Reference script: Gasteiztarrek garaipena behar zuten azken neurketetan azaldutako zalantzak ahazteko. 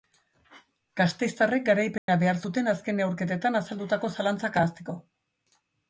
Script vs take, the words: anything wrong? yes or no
no